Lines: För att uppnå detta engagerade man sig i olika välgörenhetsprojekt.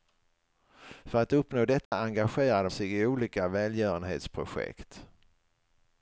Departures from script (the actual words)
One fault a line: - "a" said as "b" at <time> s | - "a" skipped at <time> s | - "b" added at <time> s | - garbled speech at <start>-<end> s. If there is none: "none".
- "man" skipped at 2.7 s